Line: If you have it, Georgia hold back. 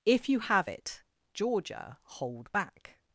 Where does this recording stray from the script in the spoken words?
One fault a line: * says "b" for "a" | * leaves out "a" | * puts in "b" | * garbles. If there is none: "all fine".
all fine